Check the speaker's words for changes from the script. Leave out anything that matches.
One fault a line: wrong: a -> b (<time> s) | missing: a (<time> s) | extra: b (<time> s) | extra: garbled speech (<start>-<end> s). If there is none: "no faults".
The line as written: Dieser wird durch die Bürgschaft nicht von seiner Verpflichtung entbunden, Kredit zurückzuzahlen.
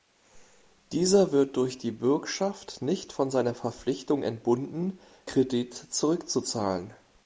no faults